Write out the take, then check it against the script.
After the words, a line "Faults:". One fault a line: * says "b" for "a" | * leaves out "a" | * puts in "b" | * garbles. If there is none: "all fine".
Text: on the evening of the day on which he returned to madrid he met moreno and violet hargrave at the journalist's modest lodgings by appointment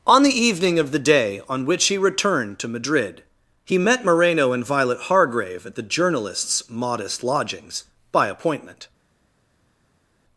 on the evening of the day on which he returned to madrid he met moreno and violet hargrave at the journalist's modest lodgings by appointment
Faults:
all fine